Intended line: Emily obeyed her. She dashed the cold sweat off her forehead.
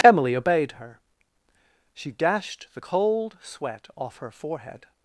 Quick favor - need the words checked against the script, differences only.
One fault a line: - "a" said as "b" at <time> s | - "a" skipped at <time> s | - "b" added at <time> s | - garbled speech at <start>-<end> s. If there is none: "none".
none